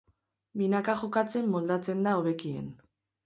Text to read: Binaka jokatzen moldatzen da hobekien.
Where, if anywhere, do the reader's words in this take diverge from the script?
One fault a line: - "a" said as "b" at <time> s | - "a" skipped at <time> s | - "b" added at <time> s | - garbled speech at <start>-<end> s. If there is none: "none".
none